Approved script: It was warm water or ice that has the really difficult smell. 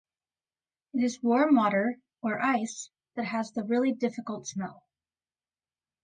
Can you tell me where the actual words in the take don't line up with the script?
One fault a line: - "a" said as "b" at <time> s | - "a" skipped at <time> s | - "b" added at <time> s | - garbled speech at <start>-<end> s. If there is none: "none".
- "was" said as "is" at 1.0 s